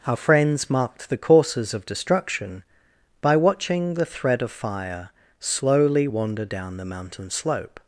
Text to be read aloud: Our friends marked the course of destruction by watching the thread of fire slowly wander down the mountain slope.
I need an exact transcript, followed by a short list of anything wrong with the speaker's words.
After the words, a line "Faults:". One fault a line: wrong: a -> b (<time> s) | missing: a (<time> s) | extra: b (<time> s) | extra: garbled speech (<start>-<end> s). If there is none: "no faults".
Our friends marked the courses of destruction by watching the thread of fire slowly wander down the mountain slope.
Faults:
wrong: course -> courses (1.2 s)